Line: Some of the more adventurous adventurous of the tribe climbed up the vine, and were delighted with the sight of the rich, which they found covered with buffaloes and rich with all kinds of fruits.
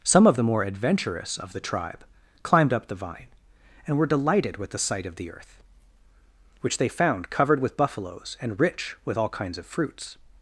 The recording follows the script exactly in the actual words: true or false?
false